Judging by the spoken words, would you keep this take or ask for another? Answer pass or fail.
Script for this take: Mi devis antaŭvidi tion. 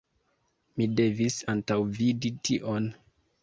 pass